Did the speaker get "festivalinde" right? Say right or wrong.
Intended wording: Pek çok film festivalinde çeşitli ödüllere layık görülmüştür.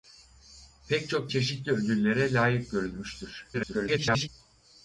wrong